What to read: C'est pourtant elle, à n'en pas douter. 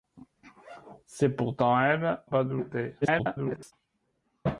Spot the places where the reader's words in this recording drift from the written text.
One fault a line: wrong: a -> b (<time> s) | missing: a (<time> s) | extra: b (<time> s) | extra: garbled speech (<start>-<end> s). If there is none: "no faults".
missing: à n'en (2.2 s)
extra: garbled speech (3.0-3.7 s)